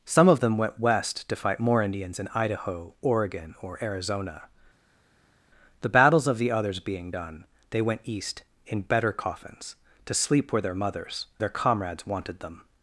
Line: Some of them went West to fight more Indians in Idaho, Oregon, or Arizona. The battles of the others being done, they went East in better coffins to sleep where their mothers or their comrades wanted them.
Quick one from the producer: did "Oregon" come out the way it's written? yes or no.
yes